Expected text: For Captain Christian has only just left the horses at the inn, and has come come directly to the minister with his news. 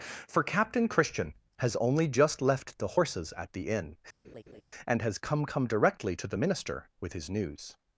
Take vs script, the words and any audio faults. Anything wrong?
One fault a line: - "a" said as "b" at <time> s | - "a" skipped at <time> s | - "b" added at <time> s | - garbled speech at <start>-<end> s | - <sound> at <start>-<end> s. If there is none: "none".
- laugh at 4.2-4.6 s